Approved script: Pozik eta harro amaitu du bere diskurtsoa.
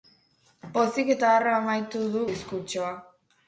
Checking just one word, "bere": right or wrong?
wrong